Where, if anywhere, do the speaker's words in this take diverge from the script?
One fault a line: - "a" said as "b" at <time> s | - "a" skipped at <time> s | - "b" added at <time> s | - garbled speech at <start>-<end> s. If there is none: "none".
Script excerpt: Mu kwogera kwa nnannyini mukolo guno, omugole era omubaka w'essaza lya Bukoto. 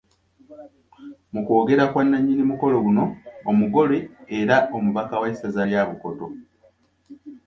none